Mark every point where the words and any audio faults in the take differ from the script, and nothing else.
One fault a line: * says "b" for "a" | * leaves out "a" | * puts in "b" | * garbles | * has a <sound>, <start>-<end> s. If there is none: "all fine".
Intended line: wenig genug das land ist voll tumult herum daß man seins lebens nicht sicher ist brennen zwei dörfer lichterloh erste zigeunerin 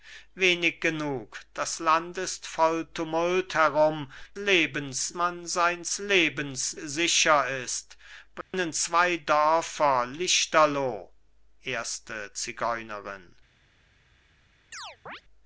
* says "lebens" for "daß"
* leaves out "nicht"
* has a dropout, 8.4-8.5 s
* has a chirp, 14.7-15.2 s